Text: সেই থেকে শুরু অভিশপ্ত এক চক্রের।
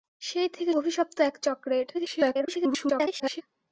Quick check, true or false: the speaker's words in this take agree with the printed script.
false